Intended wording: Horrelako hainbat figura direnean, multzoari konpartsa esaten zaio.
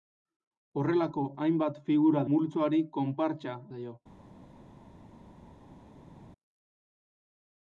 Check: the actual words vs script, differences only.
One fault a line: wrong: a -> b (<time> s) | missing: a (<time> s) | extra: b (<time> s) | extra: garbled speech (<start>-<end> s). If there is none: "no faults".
missing: direnean (2.2 s)
missing: esaten (3.6 s)